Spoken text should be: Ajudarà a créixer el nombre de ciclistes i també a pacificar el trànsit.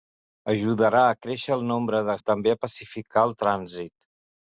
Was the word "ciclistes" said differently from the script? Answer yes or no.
yes